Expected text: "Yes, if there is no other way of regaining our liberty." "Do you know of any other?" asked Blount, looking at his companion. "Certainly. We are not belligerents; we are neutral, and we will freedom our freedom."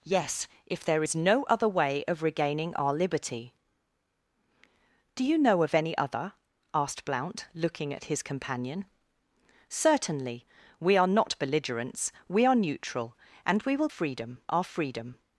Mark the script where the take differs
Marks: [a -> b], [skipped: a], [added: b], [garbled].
"Yes, if there is no other way of regaining our liberty." "Do you know of any other?" asked Blount, looking at his companion. "Certainly. We are not belligerents; we are neutral, and we will freedom our freedom."